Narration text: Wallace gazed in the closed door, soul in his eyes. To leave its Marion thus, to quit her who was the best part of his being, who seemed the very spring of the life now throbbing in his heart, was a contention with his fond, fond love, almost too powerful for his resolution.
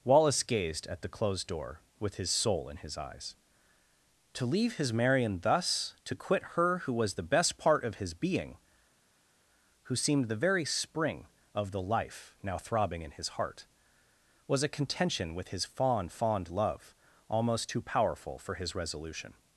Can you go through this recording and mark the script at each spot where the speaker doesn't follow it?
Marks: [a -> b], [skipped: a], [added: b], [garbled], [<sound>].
Wallace gazed [in -> at] the closed door, [added: with his] soul in his eyes. To leave [its -> his] Marion thus, to quit her who was the best part of his being, who seemed the very spring of the life now throbbing in his heart, was a contention with his fond, fond love, almost too powerful for his resolution.